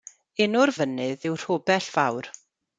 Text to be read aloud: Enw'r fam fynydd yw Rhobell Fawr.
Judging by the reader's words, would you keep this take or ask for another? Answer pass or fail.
fail